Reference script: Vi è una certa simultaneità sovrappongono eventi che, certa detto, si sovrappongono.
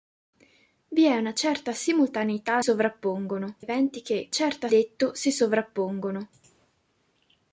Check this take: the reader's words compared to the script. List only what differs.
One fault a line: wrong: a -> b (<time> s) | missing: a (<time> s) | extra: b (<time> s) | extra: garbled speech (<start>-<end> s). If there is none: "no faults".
no faults